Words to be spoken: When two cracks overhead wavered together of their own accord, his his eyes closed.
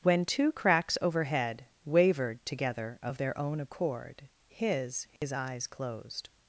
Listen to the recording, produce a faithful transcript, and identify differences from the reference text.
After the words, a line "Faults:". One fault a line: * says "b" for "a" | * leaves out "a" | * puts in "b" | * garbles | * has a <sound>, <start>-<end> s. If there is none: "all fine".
When two cracks overhead wavered together of their own accord, his his eyes closed.
Faults:
* has a dropout, 5.2-5.2 s